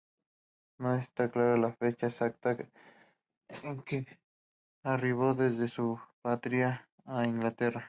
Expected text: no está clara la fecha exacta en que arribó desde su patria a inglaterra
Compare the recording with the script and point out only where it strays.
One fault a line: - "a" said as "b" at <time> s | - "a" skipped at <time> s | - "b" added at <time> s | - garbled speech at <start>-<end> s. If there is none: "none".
none